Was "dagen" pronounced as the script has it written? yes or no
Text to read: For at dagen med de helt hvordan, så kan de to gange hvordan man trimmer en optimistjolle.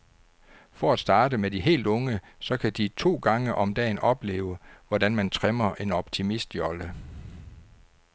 no